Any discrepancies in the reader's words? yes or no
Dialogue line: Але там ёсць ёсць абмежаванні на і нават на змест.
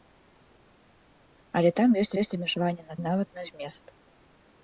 no